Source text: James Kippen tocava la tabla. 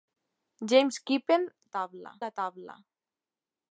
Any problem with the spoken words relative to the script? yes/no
yes